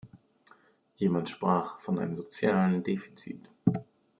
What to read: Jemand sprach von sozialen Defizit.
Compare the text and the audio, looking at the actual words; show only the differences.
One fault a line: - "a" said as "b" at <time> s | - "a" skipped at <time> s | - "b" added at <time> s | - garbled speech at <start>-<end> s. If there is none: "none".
- "einem" added at 2.0 s